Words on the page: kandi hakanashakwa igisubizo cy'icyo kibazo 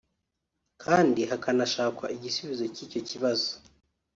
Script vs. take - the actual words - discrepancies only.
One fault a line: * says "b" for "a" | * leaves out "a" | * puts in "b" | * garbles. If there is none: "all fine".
all fine